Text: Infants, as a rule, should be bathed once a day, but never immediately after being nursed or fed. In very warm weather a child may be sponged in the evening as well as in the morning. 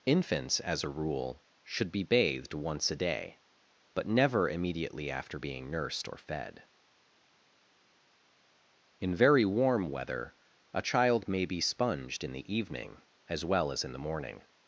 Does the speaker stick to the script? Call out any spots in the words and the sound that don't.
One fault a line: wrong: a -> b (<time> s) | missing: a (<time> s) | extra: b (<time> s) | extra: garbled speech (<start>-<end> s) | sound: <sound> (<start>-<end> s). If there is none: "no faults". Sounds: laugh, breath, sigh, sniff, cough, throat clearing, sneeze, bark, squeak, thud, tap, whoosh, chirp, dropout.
no faults